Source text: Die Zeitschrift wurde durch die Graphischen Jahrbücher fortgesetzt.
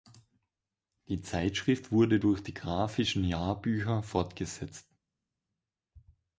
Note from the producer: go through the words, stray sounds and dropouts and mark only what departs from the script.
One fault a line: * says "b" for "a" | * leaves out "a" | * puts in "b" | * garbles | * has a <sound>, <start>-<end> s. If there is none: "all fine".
all fine